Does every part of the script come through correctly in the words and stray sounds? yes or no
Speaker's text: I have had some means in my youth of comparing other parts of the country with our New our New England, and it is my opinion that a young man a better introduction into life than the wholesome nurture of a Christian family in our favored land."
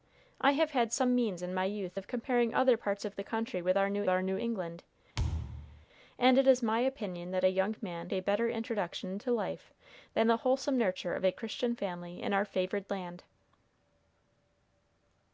no